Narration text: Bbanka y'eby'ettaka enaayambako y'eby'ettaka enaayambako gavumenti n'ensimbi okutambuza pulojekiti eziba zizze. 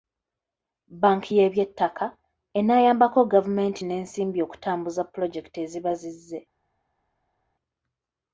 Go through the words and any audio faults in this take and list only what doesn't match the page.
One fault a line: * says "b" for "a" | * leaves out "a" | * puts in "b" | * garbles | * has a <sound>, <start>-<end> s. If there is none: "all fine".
* leaves out "y'eby'ettaka enaayambako"